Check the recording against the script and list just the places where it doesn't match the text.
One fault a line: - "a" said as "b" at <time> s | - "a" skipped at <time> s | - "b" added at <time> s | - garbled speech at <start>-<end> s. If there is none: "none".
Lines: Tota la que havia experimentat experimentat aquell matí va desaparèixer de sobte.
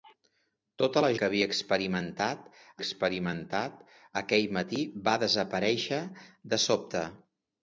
none